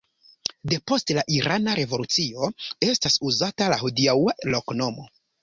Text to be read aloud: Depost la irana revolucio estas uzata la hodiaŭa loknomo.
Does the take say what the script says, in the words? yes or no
yes